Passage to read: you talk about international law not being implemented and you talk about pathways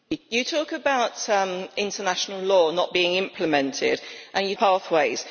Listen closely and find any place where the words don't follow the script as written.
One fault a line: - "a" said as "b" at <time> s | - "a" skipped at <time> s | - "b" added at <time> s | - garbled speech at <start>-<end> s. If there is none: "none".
- "talk about" skipped at 4.5 s